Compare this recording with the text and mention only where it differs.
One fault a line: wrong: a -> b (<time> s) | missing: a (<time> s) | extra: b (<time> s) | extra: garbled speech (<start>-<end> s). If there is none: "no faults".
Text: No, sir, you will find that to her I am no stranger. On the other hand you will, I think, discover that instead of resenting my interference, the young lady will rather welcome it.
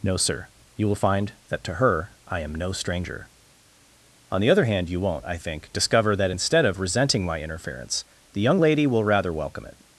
wrong: will -> won't (5.0 s)